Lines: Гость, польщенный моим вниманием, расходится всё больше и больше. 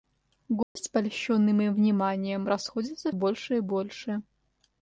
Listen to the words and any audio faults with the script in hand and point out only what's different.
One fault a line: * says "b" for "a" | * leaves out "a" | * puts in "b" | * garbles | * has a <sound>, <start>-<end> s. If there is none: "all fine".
* has a dropout, 0.6-0.8 s
* leaves out "всё"